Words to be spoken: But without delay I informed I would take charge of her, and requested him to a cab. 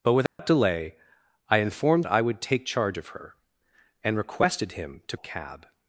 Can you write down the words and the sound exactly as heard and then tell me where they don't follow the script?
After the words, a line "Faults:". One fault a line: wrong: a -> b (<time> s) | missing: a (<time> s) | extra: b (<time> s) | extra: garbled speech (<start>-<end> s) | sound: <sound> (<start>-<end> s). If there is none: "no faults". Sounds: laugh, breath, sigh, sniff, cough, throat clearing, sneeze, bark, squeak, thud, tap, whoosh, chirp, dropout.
But without delay I informed I would take charge of her, and requested him to a cab.
Faults:
sound: dropout (0.3-0.4 s)